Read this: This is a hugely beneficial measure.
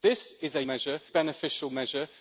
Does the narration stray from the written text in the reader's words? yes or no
yes